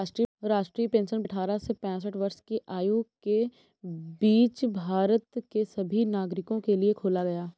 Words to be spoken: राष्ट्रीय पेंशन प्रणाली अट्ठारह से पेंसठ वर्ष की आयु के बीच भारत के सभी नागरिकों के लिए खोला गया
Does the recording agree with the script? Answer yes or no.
no